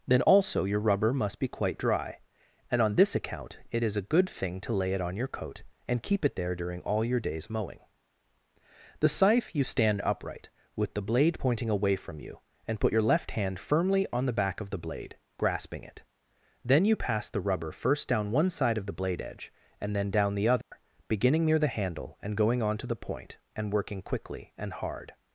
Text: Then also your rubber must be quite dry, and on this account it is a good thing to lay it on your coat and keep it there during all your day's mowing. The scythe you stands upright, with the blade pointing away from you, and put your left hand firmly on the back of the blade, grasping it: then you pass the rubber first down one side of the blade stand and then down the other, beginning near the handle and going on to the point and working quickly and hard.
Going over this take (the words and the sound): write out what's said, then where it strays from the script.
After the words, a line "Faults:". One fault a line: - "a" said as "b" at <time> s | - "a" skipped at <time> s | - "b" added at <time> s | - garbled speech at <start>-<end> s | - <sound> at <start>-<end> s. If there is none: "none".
Then also your rubber must be quite dry, and on this account it is a good thing to lay it on your coat and keep it there during all your day's mowing. The scythe you stand upright, with the blade pointing away from you, and put your left hand firmly on the back of the blade, grasping it: then you pass the rubber first down one side of the blade edge and then down the other, beginning near the handle and going on to the point and working quickly and hard.
Faults:
- "stands" said as "stand" at 9.6 s
- "stand" said as "edge" at 19.2 s
- dropout at 20.6-20.7 s